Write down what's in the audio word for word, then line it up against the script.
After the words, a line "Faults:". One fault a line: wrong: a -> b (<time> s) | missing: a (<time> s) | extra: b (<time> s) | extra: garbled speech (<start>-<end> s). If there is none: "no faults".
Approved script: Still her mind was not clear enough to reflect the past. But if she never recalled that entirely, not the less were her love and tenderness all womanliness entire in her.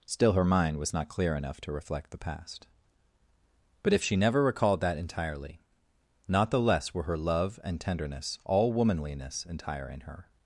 Still her mind was not clear enough to reflect the past. But if she never recalled that entirely, not the less were her love and tenderness all womanliness entire in her.
Faults:
no faults